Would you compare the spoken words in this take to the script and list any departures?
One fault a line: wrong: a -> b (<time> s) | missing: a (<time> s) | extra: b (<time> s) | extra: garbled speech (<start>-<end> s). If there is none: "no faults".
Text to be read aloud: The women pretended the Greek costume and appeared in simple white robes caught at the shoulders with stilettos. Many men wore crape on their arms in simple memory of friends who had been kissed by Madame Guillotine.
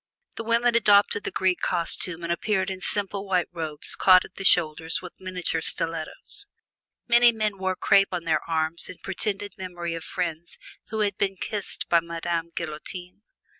wrong: pretended -> adopted (0.7 s)
extra: miniature (5.2 s)
wrong: simple -> pretended (9.0 s)